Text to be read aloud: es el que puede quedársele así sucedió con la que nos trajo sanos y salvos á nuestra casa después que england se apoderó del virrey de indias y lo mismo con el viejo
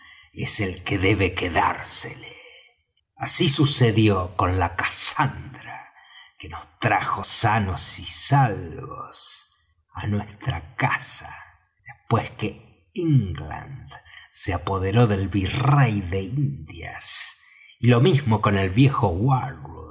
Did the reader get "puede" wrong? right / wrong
wrong